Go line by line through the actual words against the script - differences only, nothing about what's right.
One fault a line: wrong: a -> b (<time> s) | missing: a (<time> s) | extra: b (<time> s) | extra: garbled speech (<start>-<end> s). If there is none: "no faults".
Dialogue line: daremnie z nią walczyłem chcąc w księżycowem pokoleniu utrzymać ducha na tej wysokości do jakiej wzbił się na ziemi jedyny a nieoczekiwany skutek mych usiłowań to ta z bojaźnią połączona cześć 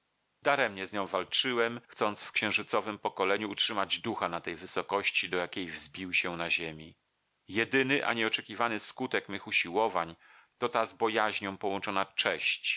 no faults